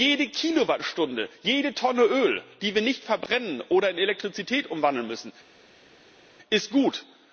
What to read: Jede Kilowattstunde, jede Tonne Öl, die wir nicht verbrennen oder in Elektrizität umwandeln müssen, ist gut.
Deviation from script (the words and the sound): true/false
false